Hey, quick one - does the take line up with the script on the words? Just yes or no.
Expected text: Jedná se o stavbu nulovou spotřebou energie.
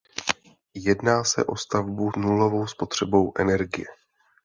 yes